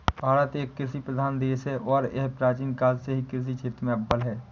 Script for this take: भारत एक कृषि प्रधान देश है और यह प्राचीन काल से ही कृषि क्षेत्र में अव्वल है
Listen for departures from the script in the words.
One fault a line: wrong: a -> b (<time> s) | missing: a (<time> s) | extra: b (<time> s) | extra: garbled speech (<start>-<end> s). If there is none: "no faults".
no faults